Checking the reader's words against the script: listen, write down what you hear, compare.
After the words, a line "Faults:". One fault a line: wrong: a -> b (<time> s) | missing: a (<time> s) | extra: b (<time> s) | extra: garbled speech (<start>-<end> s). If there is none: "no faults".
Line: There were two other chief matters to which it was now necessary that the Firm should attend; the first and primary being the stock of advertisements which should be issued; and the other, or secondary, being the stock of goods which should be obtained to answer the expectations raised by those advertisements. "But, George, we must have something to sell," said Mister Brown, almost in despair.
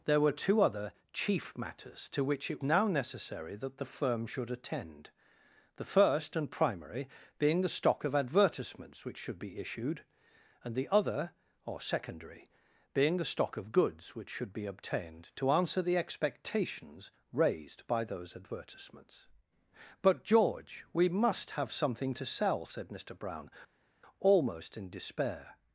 There were two other chief matters to which it now necessary that the Firm should attend; the first and primary being the stock of advertisements which should be issued; and the other, or secondary, being the stock of goods which should be obtained to answer the expectations raised by those advertisements. "But, George, we must have something to sell," said Mister Brown, almost in despair.
Faults:
missing: was (2.6 s)